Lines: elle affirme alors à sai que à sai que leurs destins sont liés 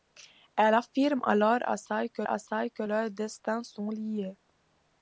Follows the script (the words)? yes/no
yes